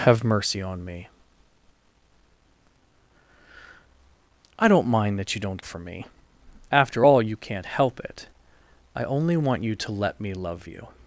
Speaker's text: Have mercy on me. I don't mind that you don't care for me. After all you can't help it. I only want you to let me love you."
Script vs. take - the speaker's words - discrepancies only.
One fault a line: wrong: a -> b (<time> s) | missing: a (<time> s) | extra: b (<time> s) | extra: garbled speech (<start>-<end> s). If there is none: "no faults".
missing: care (5.6 s)